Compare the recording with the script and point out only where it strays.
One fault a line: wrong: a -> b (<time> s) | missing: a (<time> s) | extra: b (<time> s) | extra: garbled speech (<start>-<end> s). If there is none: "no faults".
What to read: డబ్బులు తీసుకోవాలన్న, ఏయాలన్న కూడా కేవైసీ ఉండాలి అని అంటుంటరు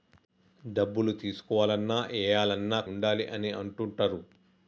missing: కూడా కేవైసీ (2.8 s)